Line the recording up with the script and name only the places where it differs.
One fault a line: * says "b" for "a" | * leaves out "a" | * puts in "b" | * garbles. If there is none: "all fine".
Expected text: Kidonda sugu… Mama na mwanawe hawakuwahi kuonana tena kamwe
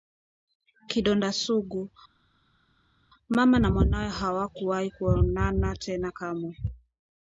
all fine